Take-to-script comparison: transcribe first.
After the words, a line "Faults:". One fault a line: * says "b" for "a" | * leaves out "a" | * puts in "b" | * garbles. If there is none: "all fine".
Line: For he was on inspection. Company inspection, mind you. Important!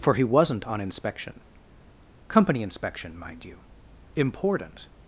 For he wasn't on inspection. Company inspection, mind you. Important!
Faults:
* says "wasn't" for "was"